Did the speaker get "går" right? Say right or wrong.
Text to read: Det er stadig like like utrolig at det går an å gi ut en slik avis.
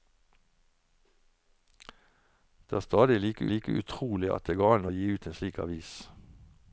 right